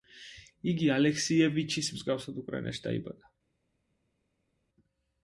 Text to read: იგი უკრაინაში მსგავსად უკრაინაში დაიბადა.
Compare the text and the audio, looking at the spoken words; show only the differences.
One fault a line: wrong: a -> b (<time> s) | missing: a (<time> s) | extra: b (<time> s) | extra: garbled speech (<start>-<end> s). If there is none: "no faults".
wrong: უკრაინაში -> ალექსიევიჩის (0.9 s)